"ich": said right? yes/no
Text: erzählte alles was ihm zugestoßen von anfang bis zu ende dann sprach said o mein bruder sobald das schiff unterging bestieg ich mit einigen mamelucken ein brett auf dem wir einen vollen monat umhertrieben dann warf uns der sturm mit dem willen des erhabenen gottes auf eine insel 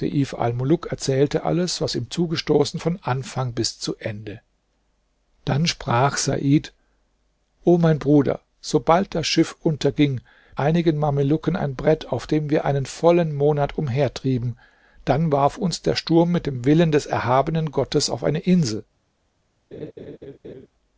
no